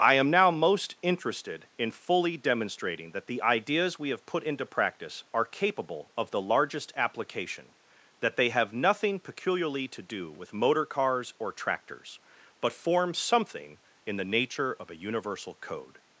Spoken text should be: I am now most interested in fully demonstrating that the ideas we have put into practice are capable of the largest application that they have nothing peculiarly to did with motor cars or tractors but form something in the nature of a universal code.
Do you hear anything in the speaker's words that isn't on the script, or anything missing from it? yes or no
yes